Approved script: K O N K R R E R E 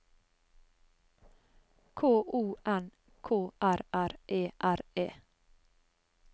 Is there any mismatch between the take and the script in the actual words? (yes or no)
no